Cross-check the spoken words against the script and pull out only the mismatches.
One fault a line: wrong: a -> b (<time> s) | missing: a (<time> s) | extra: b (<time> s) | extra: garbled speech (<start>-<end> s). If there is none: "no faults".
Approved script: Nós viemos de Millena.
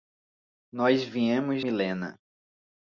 missing: de (1.6 s)